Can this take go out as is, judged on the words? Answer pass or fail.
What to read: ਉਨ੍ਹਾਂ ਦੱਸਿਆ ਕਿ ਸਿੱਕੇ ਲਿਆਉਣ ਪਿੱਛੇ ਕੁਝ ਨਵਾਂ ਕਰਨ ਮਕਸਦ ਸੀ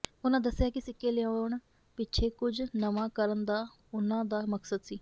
fail